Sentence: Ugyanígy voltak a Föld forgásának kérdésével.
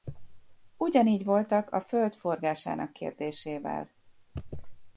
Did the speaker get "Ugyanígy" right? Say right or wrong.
right